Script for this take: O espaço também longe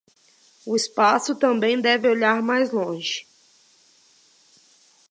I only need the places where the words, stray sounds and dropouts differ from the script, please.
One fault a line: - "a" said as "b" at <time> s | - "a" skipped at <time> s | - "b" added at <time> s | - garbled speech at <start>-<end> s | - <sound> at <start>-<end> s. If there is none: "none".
- "deve olhar mais" added at 1.8 s